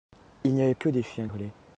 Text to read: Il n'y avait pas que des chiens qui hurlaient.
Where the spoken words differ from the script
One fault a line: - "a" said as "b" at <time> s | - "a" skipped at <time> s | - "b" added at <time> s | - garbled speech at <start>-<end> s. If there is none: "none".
- "pas" skipped at 0.7 s
- "qui" skipped at 1.3 s